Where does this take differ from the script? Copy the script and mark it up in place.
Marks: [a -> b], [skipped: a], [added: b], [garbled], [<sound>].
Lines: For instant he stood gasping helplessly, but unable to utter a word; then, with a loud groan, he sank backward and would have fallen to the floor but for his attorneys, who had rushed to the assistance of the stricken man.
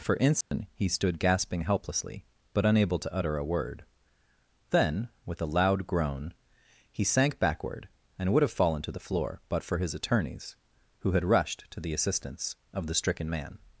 For instant [dropout] he stood gasping helplessly, but unable to utter a word; then, with a loud groan, he sank backward and would have fallen to the floor but for his attorneys, who had rushed to the assistance of the stricken man.